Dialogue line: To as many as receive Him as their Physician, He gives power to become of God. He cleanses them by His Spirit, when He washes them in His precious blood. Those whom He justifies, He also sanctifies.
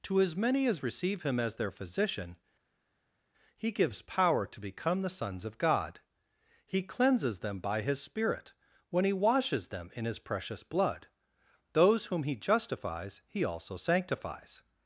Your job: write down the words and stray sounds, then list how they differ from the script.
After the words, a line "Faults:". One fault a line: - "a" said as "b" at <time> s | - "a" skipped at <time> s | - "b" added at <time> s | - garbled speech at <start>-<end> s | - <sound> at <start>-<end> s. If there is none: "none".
To as many as receive Him as their Physician, He gives power to become the sons of God. He cleanses them by His Spirit, when He washes them in His precious blood. Those whom He justifies, He also sanctifies.
Faults:
- "the sons" added at 5.0 s